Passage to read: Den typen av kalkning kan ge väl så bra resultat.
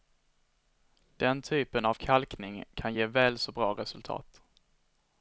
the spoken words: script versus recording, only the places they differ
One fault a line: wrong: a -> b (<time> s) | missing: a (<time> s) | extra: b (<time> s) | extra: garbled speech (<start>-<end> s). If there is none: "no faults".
no faults